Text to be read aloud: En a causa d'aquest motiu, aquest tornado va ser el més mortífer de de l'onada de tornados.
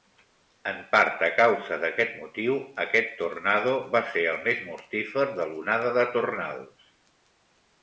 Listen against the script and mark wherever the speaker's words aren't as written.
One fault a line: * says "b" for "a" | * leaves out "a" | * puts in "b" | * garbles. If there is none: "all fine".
* puts in "part"
* leaves out "de"